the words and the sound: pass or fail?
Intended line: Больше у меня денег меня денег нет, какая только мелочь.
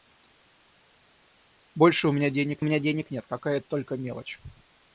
pass